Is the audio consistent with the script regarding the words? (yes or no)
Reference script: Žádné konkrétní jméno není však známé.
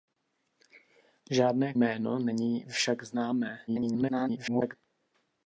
no